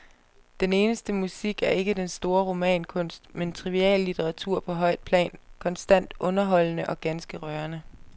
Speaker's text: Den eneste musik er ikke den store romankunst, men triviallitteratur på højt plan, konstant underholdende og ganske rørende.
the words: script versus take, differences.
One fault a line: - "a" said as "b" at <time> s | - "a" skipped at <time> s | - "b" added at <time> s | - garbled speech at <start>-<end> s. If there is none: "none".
none